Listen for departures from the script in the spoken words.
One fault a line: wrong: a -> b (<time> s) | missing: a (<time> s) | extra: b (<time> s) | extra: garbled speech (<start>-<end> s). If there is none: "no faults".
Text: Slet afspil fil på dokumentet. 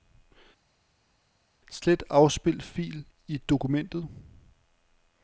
wrong: på -> i (3.3 s)